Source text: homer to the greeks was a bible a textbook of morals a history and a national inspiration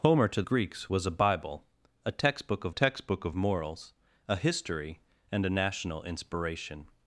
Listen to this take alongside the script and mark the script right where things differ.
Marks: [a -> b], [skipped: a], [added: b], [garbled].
homer to [skipped: the] greeks was a bible a textbook of [added: textbook of] morals a history and a national inspiration